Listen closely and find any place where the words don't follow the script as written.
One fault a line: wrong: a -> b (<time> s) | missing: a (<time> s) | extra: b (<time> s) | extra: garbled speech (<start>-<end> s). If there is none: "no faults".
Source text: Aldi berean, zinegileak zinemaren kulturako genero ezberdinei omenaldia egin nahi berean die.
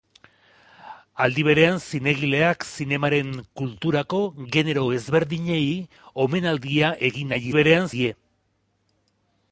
no faults